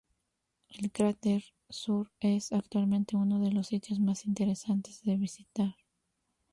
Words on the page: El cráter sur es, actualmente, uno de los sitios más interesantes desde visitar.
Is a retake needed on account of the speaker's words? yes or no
yes